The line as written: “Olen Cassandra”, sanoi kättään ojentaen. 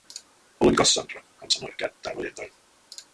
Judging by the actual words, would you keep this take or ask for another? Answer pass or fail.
fail